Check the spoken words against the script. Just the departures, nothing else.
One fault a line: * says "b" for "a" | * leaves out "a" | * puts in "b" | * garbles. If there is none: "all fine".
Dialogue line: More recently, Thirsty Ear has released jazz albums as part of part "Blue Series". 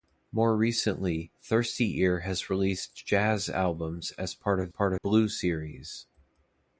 all fine